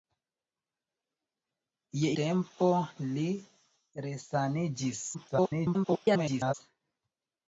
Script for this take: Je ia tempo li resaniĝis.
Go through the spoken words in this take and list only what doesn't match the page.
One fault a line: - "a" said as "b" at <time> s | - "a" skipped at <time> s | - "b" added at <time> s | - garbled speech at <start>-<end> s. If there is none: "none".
- "ia" skipped at 2.1 s
- garbled speech at 5.1-6.5 s